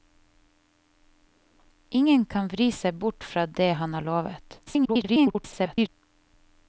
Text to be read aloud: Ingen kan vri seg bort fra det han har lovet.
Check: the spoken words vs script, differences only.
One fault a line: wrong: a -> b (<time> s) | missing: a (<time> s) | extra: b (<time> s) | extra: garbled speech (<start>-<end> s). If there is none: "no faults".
extra: garbled speech (4.7-5.9 s)